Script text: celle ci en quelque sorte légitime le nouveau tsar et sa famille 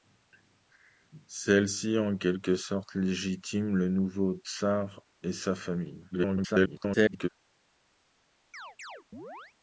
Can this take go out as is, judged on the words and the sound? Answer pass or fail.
fail